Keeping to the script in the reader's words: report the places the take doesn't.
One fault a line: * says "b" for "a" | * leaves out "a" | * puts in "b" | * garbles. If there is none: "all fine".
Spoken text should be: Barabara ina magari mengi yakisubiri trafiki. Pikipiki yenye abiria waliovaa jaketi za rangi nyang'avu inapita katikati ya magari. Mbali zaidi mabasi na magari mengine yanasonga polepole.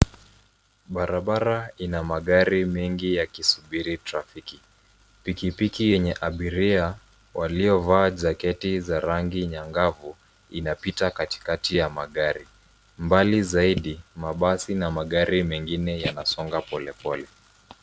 all fine